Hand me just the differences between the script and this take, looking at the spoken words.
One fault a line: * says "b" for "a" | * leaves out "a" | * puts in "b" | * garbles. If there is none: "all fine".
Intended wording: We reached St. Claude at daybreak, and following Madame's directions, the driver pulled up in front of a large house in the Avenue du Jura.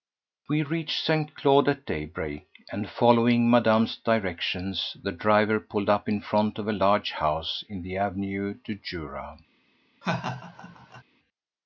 all fine